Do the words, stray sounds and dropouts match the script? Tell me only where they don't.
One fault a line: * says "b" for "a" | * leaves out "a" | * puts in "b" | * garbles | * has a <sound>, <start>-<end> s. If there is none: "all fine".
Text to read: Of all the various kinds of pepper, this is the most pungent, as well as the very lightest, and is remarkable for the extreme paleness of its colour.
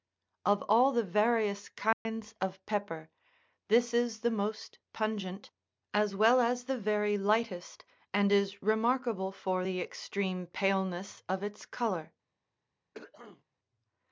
* has a dropout, 1.9-2.1 s
* has a throat clearing, 12.9-13.4 s